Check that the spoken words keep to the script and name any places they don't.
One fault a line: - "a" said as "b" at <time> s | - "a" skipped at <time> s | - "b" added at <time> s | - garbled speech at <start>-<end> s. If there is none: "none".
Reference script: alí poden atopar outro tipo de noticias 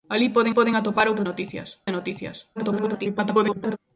- "poden" added at 0.5 s
- "tipo" said as "noticias" at 1.2 s
- garbled speech at 2.6-3.8 s